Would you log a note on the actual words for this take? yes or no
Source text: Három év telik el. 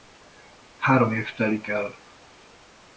no